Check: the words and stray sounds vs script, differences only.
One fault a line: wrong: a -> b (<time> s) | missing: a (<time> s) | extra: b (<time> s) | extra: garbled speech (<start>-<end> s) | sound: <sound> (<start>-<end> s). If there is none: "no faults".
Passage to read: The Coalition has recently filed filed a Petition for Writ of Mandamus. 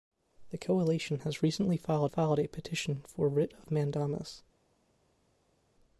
no faults